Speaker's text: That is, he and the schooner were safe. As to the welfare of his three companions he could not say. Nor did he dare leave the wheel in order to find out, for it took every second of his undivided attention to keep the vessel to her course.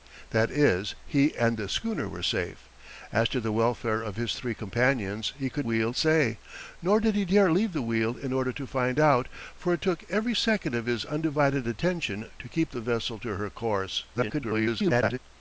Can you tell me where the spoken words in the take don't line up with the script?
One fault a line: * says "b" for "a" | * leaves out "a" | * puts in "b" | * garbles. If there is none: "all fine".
* says "wheel" for "not"
* garbles